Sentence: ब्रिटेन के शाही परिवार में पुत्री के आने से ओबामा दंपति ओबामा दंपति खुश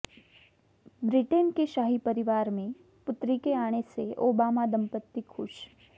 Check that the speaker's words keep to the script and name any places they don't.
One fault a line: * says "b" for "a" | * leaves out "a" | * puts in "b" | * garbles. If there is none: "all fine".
* leaves out "ओबामा दंपति"